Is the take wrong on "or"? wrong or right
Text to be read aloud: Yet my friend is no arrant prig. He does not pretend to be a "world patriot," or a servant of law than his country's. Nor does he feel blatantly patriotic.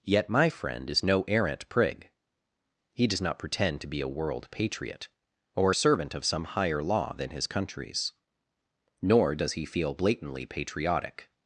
right